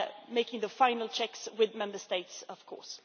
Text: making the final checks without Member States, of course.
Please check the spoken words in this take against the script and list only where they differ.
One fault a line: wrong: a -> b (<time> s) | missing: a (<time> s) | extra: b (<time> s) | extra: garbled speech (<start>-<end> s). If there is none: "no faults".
wrong: without -> with (1.6 s)